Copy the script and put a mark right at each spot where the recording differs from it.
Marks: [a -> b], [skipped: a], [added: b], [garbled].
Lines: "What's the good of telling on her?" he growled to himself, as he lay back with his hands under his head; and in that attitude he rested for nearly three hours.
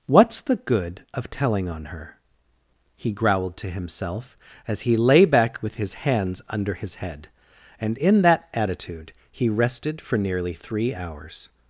"What's the good of telling on her?" he growled to himself, as he lay back with his hands under his head; and in that attitude he rested for nearly three hours.